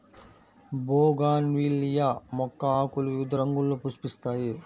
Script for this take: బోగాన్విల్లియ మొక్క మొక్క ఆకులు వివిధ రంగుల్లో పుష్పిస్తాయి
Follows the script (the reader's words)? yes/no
no